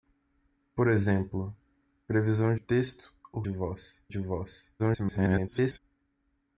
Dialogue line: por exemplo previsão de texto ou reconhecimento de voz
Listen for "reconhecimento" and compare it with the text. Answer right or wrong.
wrong